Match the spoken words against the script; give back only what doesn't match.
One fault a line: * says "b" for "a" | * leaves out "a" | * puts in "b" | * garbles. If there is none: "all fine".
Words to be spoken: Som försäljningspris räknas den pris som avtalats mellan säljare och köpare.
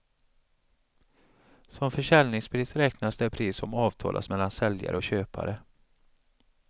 * says "det" for "den"